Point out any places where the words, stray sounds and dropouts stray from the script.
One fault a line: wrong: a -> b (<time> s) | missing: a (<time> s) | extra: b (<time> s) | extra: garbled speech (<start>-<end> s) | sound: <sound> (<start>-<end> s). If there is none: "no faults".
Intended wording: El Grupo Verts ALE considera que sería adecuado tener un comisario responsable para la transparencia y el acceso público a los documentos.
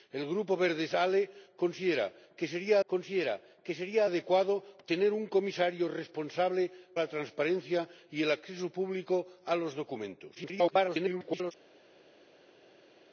extra: considera que sería (2.9 s)
missing: para (6.7 s)
extra: garbled speech (10.3-11.5 s)